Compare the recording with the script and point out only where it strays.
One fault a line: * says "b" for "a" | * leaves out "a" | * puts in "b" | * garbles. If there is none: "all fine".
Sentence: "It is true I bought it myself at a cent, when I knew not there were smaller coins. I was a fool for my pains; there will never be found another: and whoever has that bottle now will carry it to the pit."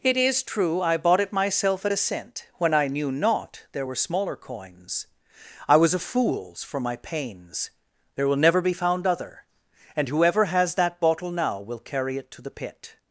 * says "fools" for "fool"
* says "other" for "another"